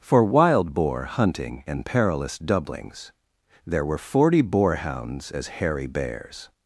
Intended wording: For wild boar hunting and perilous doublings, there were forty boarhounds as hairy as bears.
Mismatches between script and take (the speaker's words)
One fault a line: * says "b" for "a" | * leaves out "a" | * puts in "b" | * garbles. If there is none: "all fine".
* leaves out "as"